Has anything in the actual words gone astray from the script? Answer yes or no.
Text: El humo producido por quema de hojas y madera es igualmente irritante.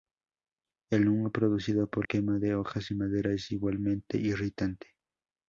no